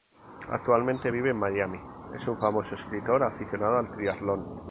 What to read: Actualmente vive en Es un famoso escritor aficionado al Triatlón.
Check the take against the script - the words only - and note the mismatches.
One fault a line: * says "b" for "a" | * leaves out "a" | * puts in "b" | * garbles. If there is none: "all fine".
* puts in "Miami"